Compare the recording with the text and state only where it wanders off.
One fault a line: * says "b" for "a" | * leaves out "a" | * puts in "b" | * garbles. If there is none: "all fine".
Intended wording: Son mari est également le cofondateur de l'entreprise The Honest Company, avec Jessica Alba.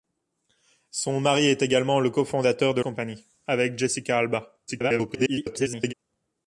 * leaves out "l'entreprise The Honest"
* garbles